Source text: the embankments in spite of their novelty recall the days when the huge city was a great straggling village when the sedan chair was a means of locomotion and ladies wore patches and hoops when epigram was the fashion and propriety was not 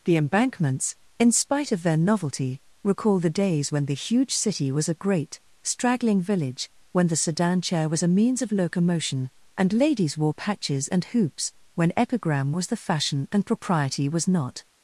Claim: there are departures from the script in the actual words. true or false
false